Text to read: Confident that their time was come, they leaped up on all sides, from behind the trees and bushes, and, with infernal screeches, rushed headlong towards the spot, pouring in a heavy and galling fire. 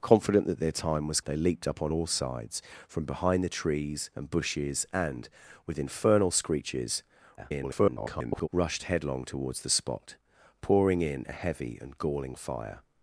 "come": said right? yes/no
no